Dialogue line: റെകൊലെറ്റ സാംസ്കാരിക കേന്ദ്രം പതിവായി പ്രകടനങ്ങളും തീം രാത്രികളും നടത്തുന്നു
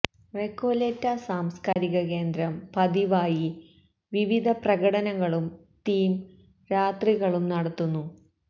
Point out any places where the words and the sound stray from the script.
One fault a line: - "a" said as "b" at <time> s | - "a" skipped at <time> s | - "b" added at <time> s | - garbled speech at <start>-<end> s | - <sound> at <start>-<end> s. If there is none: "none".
- dropout at 1.7-1.8 s
- "വിവിധ" added at 4.1 s